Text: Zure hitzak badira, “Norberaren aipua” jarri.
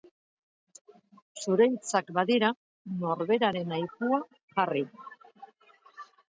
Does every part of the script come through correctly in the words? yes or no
yes